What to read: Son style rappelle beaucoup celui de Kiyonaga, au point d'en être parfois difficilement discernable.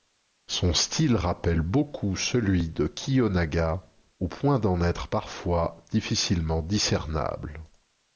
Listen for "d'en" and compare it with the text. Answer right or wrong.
right